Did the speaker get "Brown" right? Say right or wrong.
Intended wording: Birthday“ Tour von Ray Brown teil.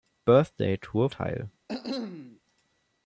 wrong